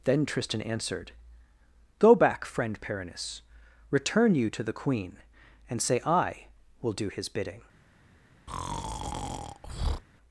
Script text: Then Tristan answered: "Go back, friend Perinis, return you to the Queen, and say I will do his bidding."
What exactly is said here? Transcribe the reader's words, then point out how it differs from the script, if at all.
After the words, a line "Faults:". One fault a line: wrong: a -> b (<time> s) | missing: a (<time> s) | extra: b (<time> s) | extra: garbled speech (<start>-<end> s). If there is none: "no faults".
Then Tristan answered: "Go back, friend Perinis, return you to the Queen, and say I will do his bidding."
Faults:
no faults